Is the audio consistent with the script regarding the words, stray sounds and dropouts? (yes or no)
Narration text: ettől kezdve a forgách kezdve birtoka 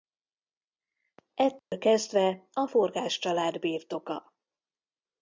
no